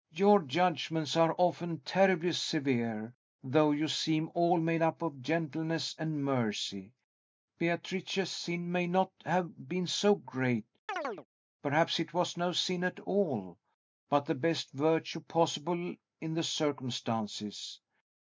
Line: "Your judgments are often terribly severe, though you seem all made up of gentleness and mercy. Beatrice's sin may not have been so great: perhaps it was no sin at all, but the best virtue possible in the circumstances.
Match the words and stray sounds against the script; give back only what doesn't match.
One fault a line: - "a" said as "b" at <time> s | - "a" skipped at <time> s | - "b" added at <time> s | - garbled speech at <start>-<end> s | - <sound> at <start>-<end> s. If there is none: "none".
- chirp at 10.9-11.3 s